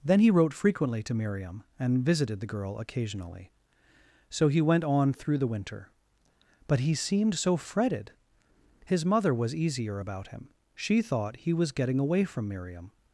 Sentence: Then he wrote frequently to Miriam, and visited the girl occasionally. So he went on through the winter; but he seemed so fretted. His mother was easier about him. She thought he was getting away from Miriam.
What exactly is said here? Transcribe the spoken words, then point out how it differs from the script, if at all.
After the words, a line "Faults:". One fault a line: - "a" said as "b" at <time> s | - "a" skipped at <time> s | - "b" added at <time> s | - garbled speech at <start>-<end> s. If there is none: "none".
Then he wrote frequently to Miriam, and visited the girl occasionally. So he went on through the winter; but he seemed so fretted. His mother was easier about him. She thought he was getting away from Miriam.
Faults:
none